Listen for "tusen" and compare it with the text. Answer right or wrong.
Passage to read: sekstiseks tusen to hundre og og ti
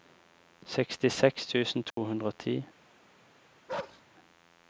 right